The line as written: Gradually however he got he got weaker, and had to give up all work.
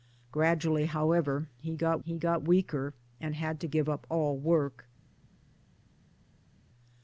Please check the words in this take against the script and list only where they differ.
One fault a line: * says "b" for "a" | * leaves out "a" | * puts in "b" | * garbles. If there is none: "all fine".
all fine